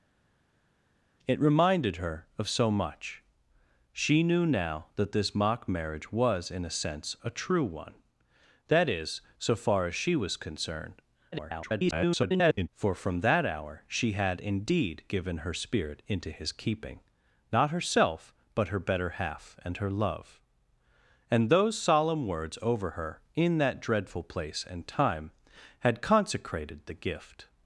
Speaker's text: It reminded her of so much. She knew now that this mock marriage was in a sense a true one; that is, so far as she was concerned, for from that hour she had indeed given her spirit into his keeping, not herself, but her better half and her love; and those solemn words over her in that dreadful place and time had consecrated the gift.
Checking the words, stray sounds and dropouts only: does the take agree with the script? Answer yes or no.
no